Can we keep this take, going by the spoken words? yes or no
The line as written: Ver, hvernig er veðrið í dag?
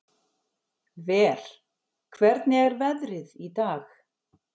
yes